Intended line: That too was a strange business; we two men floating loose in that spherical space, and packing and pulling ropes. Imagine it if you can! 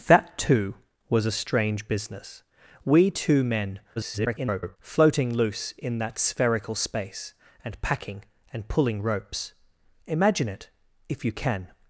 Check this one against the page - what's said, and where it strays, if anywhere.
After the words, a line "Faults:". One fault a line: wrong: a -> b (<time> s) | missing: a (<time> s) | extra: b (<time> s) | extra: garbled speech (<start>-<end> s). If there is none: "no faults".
That too was a strange business; we two men [garbled] floating loose in that spherical space, and packing and pulling ropes. Imagine it if you can!
Faults:
extra: garbled speech (4.0-4.8 s)